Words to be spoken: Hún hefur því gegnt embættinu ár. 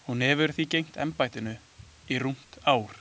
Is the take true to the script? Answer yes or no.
no